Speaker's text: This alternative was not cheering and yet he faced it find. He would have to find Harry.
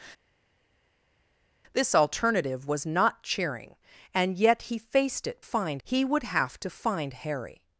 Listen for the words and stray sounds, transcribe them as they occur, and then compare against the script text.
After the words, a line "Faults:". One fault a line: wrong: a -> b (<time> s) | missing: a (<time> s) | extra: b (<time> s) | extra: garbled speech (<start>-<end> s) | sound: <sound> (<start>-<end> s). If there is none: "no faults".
This alternative was not cheering and yet he faced it find. He would have to find Harry.
Faults:
no faults